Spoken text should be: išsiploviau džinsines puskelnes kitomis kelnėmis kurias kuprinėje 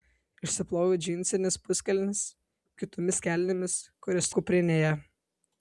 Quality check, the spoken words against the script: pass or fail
pass